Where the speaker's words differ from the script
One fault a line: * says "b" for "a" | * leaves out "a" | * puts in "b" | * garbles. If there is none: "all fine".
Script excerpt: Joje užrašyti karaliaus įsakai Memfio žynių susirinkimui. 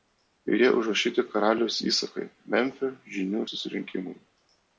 all fine